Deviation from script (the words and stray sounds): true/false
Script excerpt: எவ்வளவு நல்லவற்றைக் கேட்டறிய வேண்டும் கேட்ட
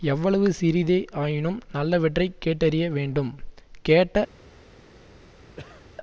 true